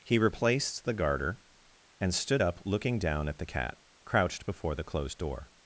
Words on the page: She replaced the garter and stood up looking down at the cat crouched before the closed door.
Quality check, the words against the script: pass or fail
fail